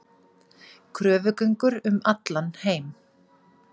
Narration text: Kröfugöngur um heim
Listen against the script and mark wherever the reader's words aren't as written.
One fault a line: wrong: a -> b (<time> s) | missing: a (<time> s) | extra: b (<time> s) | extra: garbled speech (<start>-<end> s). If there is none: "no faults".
extra: allan (2.1 s)